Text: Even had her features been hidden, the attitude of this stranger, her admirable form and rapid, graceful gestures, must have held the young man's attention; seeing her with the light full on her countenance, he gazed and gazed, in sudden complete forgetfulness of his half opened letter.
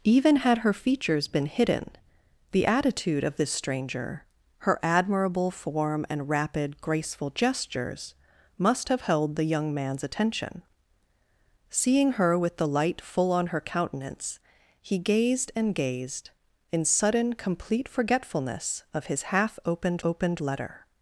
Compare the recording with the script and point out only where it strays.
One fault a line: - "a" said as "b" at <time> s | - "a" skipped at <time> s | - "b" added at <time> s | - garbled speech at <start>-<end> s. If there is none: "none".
- "opened" added at 20.0 s